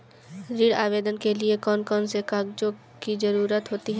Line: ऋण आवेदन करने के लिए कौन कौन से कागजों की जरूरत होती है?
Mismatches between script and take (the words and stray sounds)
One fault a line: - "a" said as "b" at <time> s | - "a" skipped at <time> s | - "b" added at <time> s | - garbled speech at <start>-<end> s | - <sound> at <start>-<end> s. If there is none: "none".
- "करने" skipped at 1.2 s